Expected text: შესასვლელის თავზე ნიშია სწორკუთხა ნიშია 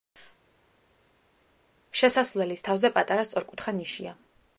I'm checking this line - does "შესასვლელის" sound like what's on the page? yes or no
yes